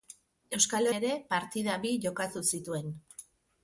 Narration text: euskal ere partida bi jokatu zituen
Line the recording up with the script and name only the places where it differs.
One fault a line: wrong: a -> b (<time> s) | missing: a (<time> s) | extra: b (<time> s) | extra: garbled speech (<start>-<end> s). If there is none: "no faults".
no faults